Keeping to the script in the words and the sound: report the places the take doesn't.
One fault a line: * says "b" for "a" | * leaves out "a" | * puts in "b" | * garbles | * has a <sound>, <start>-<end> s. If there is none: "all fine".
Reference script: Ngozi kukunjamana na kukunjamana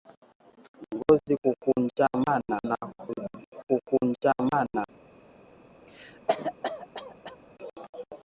* has a cough, 5.9-7.4 s